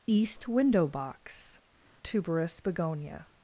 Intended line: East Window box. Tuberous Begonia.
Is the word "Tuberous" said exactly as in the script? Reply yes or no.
yes